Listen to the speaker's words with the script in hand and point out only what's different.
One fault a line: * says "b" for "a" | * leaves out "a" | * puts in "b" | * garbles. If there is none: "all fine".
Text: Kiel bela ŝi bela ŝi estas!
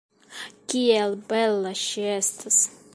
* leaves out "bela ŝi"